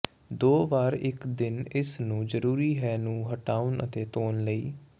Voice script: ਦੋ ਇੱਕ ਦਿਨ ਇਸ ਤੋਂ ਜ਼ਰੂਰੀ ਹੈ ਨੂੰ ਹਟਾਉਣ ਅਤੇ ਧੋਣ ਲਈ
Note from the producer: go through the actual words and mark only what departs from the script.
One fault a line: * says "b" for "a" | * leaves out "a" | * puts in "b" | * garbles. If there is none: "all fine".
* puts in "ਵਾਰ"
* says "ਨੂੰ" for "ਤੋਂ"